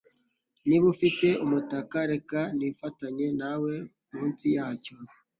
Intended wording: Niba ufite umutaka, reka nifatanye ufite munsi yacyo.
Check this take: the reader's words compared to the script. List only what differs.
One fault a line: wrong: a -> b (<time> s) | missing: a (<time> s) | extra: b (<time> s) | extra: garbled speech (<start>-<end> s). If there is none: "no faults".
wrong: ufite -> nawe (3.4 s)